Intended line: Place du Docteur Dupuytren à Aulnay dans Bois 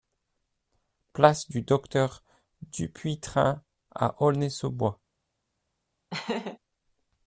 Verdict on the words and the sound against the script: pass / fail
fail